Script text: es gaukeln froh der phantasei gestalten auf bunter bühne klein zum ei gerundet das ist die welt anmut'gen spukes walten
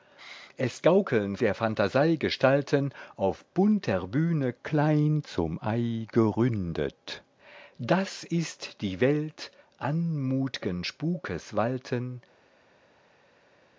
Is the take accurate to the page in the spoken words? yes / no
no